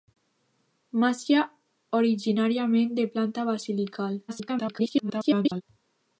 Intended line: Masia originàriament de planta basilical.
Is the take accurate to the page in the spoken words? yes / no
no